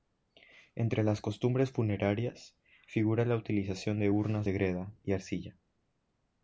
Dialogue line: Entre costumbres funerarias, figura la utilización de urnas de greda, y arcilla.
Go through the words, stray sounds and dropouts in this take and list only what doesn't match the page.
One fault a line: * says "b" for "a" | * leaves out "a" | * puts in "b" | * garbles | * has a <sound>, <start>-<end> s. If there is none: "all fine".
* puts in "las"